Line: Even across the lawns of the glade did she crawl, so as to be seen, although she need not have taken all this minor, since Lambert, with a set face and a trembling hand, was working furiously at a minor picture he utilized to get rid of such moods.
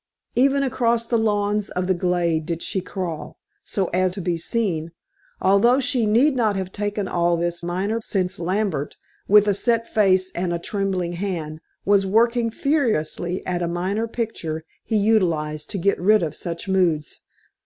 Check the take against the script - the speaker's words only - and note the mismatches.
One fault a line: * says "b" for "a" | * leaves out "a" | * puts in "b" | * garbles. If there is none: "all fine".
all fine